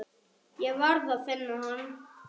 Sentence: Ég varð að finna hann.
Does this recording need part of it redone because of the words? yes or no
no